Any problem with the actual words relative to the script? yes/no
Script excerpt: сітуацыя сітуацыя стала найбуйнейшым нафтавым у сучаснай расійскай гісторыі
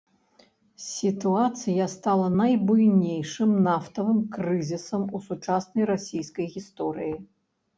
yes